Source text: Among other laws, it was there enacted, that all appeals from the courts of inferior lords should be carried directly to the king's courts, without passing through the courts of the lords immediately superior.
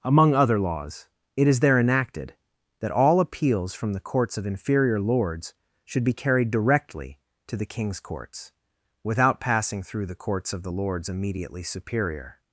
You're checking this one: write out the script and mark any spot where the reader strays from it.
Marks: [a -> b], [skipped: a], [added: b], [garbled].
Among other laws, it [was -> is] there enacted, that all appeals from the courts of inferior lords should be carried directly to the king's courts, without passing through the courts of the lords immediately superior.